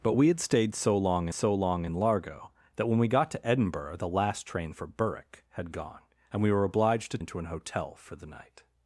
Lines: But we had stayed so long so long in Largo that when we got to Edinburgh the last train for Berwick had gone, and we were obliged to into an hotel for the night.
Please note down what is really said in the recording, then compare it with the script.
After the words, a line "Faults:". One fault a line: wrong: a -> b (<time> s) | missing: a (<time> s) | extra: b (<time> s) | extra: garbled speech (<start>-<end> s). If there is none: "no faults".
But we had stayed so long so long in Largo that when we got to Edinburgh the last train for Berwick had gone, and we were obliged to into an hotel for the night.
Faults:
no faults